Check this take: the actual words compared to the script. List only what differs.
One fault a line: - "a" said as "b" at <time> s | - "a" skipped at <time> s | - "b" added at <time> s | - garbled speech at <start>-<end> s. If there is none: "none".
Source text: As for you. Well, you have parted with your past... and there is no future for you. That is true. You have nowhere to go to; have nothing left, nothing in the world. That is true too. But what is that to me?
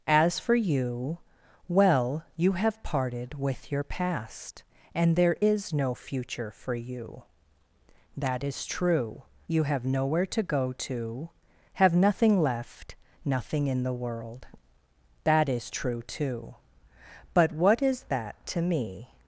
none